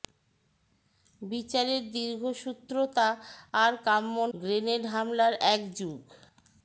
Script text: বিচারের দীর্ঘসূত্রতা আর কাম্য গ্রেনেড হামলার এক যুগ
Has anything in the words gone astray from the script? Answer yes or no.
no